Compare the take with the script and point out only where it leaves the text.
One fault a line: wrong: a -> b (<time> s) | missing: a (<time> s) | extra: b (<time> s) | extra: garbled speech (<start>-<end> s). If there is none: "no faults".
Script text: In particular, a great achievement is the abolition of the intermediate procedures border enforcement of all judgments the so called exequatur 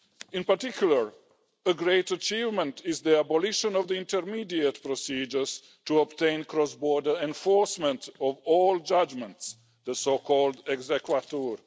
extra: to obtain cross (5.8 s)